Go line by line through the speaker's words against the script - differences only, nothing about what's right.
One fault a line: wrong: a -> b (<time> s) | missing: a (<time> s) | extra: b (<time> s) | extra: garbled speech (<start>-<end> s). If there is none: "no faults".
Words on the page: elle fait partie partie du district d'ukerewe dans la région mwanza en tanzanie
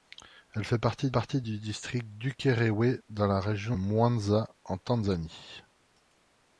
no faults